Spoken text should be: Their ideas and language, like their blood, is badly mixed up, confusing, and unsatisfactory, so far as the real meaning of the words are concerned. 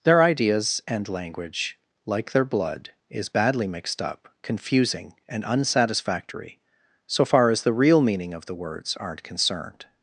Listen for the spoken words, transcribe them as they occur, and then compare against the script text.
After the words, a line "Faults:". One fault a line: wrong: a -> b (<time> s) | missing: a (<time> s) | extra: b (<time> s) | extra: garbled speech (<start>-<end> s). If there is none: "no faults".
Their ideas and language, like their blood, is badly mixed up, confusing, and unsatisfactory, so far as the real meaning of the words aren't concerned.
Faults:
wrong: are -> aren't (9.0 s)